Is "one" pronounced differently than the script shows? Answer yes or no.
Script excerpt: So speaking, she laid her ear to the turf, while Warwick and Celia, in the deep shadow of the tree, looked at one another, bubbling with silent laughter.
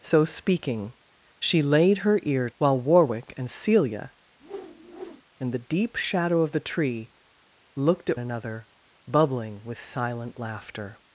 yes